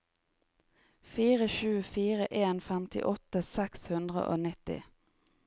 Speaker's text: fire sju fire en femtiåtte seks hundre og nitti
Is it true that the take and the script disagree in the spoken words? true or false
false